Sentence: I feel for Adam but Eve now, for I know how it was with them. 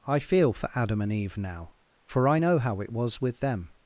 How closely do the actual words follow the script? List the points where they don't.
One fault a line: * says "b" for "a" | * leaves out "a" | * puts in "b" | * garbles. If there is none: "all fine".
* says "and" for "but"